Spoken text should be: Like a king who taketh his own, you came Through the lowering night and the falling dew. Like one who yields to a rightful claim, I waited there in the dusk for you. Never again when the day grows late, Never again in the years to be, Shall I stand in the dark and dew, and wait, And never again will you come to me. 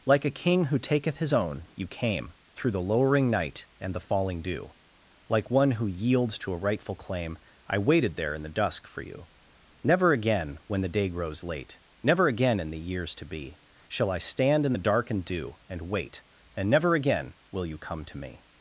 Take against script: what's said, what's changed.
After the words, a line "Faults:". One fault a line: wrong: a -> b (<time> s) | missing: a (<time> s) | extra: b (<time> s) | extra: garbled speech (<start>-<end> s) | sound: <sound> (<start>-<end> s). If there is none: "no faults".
Like a king who taketh his own, you came Through the lowering night and the falling dew. Like one who yields to a rightful claim, I waited there in the dusk for you. Never again when the day grows late, Never again in the years to be, Shall I stand in the dark and dew, and wait, And never again will you come to me.
Faults:
no faults